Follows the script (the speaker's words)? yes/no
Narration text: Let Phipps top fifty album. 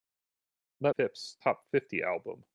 yes